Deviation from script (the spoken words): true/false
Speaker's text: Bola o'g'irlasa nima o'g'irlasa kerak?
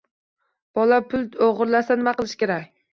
true